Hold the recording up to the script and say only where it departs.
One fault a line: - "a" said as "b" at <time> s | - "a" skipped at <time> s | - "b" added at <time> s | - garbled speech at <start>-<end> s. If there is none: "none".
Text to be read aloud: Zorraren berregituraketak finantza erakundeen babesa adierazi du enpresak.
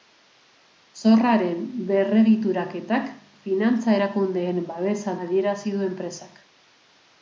none